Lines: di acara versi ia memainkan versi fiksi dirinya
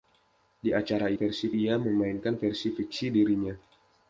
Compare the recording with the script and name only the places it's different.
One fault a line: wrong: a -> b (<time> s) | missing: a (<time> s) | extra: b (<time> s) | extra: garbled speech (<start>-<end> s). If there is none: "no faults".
no faults